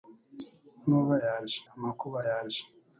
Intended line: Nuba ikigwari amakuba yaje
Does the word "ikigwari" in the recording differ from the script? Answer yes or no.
yes